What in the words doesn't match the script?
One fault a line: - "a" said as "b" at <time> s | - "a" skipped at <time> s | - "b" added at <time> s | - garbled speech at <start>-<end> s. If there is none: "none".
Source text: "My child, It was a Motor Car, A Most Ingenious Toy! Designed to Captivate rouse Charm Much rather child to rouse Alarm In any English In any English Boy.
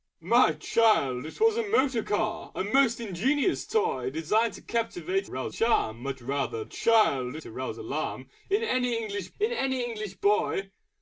none